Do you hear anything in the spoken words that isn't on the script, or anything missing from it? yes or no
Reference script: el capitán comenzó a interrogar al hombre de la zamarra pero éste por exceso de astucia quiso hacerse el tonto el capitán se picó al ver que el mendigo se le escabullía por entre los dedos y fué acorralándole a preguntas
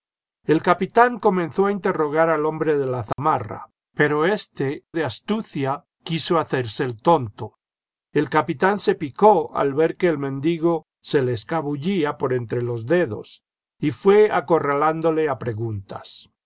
yes